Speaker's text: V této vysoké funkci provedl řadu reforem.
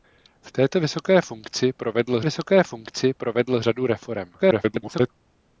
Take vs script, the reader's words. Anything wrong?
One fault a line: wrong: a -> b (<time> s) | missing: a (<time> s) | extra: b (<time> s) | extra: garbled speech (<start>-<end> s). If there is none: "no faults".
extra: vysoké funkci provedl (2.2 s)
extra: garbled speech (4.4-5.1 s)